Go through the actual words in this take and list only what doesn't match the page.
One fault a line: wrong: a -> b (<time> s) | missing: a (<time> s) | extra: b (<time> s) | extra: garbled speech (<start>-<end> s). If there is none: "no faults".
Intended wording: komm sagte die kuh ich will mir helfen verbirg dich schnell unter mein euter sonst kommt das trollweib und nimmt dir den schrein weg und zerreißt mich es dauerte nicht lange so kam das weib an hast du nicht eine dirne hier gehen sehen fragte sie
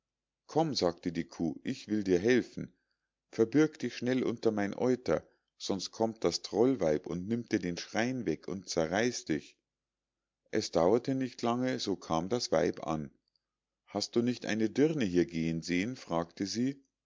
wrong: mir -> dir (2.0 s)
wrong: mich -> dich (9.3 s)